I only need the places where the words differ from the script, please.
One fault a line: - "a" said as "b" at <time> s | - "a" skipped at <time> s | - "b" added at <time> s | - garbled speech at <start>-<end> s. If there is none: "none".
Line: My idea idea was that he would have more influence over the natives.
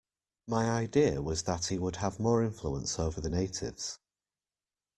- "idea" skipped at 1.2 s